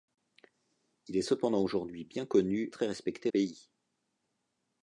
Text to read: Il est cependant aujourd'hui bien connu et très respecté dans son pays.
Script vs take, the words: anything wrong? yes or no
yes